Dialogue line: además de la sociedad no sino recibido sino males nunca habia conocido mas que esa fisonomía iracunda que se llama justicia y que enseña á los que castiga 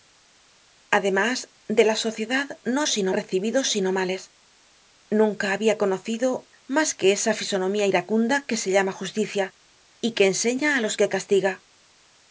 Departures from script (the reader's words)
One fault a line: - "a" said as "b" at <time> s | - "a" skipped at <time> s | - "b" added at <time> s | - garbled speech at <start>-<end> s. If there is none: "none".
none